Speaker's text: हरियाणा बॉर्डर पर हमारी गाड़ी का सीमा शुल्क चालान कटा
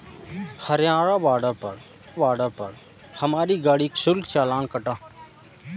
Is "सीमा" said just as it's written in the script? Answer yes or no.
no